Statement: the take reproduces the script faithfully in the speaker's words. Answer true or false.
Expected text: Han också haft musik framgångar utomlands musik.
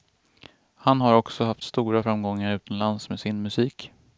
false